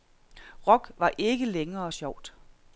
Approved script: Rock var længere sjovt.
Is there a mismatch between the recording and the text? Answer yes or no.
yes